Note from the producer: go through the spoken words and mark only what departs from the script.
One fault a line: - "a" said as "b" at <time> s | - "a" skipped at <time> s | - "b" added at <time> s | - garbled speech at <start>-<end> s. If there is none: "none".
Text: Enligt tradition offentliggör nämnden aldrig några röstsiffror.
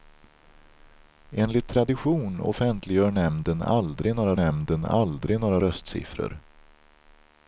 - "nämnden aldrig några" added at 4.3 s